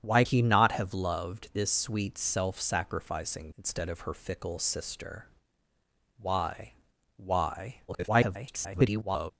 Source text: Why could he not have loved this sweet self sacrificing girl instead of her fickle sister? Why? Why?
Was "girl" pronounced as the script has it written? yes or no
no